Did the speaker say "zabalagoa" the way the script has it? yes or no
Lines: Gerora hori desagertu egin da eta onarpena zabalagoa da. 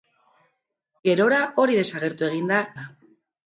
no